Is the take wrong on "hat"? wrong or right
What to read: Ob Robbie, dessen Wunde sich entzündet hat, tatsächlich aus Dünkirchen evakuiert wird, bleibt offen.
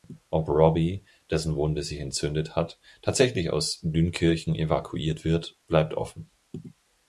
right